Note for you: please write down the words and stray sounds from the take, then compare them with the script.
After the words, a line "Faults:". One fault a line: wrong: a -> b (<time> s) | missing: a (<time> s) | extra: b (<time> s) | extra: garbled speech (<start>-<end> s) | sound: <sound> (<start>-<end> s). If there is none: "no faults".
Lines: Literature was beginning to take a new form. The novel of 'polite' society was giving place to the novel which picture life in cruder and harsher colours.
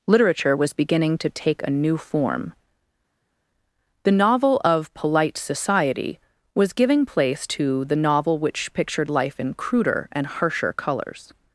Literature was beginning to take a new form. The novel of 'polite' society was giving place to the novel which pictured life in cruder and harsher colours.
Faults:
wrong: picture -> pictured (8.7 s)